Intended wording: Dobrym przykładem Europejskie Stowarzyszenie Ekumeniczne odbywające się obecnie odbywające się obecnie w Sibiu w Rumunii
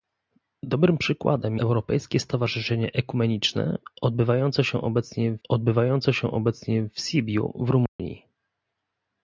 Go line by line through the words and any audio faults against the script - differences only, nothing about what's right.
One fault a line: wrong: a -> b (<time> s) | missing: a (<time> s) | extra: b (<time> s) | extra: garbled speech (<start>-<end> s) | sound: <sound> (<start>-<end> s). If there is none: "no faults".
sound: dropout (7.9-8.0 s)